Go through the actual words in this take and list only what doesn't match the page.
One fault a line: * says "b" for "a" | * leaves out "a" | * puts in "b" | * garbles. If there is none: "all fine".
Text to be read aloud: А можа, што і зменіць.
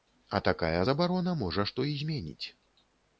* puts in "такая забарона"